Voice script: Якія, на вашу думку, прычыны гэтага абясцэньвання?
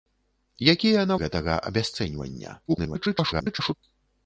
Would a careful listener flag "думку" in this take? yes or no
yes